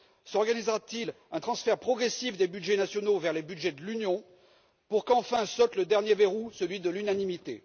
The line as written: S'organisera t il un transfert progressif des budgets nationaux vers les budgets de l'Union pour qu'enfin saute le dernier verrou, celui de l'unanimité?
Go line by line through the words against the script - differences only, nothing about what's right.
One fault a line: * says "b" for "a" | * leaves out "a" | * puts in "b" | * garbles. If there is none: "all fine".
all fine